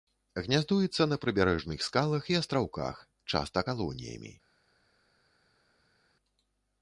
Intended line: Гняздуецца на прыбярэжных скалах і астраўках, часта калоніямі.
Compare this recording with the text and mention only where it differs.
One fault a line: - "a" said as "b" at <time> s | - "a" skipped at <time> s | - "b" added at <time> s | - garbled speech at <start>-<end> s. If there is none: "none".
none